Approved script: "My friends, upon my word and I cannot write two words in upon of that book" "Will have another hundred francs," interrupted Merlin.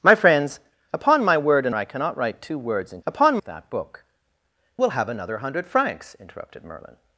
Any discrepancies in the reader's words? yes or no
no